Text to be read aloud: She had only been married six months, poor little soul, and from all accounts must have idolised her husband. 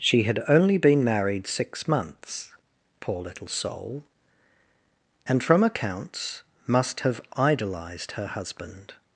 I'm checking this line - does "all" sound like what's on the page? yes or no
no